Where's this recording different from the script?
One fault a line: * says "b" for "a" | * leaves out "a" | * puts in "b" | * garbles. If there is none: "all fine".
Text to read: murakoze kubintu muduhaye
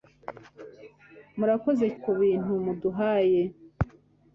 all fine